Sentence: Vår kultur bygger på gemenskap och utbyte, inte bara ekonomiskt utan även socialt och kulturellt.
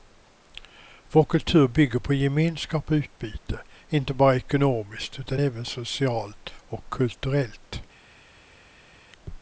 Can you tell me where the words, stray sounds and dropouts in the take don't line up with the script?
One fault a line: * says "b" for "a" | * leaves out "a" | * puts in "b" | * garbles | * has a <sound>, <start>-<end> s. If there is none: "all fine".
all fine